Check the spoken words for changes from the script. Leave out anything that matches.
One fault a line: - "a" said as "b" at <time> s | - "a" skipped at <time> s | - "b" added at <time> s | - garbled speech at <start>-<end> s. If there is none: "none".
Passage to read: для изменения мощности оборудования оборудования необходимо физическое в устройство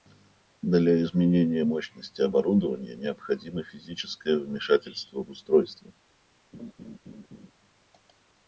- "оборудования" skipped at 3.0 s
- "вмешательство" added at 4.4 s